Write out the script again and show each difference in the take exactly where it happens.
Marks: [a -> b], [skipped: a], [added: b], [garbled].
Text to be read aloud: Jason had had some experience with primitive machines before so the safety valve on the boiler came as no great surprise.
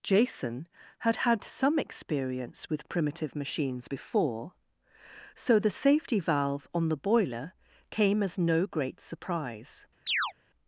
Jason had had some experience with primitive machines before so the safety valve on the boiler came as no great surprise.